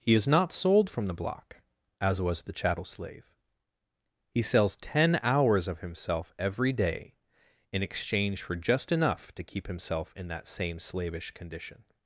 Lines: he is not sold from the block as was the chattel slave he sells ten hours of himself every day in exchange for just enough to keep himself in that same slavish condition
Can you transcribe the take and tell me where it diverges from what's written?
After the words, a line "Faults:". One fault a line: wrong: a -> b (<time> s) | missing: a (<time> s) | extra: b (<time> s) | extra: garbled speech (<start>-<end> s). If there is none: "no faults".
he is not sold from the block as was the chattel slave he sells ten hours of himself every day in exchange for just enough to keep himself in that same slavish condition
Faults:
no faults